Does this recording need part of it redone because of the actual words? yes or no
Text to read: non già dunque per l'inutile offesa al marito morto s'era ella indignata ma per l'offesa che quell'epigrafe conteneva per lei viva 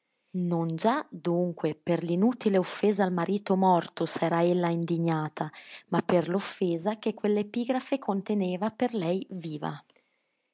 no